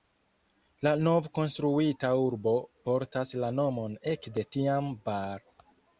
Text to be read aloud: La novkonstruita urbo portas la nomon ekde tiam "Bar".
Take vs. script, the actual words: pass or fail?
pass